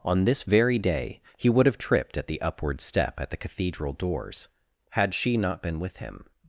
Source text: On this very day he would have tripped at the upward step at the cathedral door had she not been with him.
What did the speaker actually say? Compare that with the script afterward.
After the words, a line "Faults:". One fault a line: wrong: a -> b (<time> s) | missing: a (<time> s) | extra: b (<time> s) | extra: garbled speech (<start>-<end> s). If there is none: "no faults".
On this very day he would have tripped at the upward step at the cathedral doors had she not been with him.
Faults:
wrong: door -> doors (3.9 s)